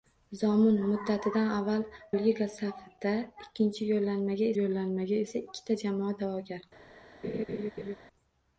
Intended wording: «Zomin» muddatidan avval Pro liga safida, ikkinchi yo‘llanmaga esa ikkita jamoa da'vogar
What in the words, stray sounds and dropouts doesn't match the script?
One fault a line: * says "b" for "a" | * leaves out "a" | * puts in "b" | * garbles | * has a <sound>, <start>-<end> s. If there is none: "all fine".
* leaves out "Pro"
* puts in "yo‘llanmaga"
* has a laugh, 7.2-8.0 s